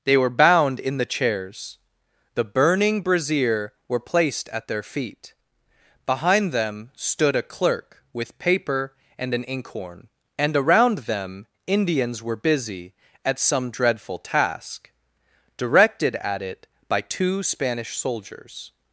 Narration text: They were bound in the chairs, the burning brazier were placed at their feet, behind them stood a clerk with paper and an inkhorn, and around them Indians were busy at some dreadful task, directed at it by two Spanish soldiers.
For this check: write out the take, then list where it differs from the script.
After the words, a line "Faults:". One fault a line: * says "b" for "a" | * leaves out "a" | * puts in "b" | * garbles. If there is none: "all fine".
They were bound in the chairs, the burning brazier were placed at their feet, behind them stood a clerk with paper and an inkhorn, and around them Indians were busy at some dreadful task, directed at it by two Spanish soldiers.
Faults:
all fine